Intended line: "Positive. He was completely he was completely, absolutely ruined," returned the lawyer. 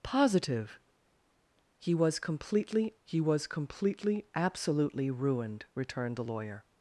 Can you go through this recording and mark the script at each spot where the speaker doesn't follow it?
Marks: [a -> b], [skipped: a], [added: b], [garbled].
"Positive. He was completely he was completely, absolutely ruined," returned the lawyer.